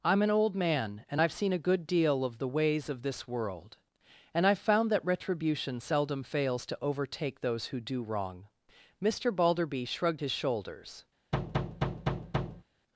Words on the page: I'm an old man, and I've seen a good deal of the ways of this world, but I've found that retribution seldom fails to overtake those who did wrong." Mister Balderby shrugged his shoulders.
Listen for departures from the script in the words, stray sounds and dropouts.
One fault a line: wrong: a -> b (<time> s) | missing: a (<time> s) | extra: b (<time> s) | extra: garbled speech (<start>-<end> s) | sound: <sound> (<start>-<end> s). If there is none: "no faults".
wrong: but -> and (4.3 s)
wrong: did -> do (7.8 s)
sound: thud (11.3-12.6 s)